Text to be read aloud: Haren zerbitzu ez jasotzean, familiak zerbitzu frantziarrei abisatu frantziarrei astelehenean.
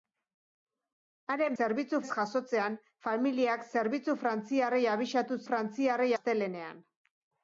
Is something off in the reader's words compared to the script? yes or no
no